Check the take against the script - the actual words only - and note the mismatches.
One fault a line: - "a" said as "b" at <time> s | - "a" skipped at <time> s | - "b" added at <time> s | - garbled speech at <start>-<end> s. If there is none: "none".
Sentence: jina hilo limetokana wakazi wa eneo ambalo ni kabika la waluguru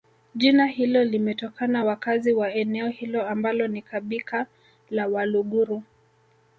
- "hilo" added at 2.9 s